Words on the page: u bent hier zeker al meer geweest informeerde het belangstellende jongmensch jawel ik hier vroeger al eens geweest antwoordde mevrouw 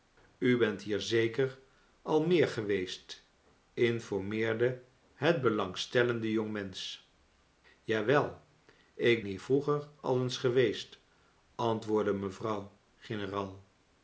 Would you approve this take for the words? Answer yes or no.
yes